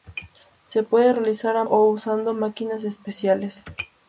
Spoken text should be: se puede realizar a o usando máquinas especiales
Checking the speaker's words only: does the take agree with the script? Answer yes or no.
yes